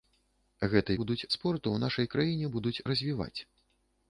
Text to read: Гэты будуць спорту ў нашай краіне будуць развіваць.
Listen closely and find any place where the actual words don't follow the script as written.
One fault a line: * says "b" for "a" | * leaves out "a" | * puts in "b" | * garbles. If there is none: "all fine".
all fine